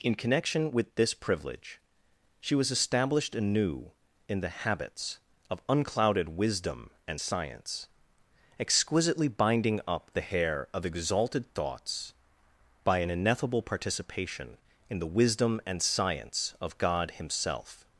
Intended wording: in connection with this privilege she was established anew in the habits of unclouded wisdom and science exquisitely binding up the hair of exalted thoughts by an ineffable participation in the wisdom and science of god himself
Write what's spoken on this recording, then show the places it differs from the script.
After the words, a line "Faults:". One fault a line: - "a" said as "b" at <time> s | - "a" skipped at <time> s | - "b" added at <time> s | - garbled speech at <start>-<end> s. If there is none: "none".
in connection with this privilege she was established anew in the habits of unclouded wisdom and science exquisitely binding up the hair of exalted thoughts by an ineffable participation in the wisdom and science of god himself
Faults:
none